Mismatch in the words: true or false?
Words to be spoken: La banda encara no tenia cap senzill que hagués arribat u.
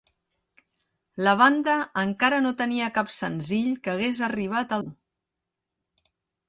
false